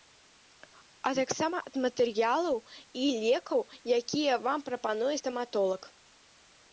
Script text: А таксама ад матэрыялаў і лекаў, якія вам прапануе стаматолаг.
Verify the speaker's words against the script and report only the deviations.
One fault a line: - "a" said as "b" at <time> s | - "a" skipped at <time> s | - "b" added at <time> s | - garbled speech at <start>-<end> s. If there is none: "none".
none